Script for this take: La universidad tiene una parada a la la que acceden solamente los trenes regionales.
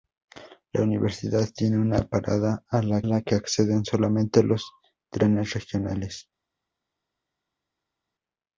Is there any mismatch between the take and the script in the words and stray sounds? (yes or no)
no